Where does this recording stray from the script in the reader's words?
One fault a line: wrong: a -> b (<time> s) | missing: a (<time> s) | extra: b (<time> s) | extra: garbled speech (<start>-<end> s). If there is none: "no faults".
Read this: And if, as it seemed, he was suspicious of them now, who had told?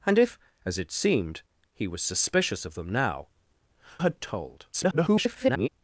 missing: who (3.3 s)
extra: garbled speech (4.7-5.7 s)